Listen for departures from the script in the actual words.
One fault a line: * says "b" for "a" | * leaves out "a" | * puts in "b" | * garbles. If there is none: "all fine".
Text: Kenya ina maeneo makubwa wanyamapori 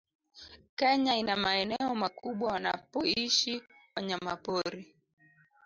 * puts in "wanapoishi"